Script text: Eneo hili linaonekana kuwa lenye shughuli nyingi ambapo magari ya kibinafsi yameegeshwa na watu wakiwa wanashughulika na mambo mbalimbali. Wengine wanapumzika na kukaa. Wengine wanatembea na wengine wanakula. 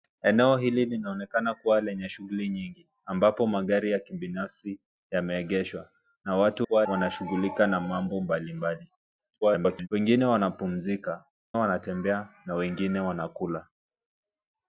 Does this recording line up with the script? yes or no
no